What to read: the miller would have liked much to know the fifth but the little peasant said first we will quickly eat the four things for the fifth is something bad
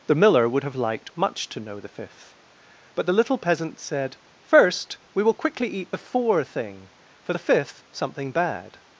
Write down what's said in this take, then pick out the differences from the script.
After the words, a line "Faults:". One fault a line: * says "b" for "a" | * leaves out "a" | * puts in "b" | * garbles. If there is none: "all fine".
the miller would have liked much to know the fifth but the little peasant said first we will quickly eat the four thing for the fifth something bad
Faults:
* says "thing" for "things"
* leaves out "is"